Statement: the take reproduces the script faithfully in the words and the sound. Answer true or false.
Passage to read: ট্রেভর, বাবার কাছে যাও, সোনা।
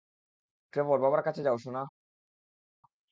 true